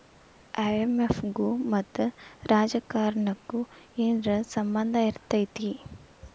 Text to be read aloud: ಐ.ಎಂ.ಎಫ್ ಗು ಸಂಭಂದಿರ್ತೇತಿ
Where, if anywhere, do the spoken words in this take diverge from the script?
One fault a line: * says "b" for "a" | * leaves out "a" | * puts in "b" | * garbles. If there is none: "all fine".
* puts in "ಮತ್ತ ರಾಜಕಾರಣಕ್ಕು ಏನರ"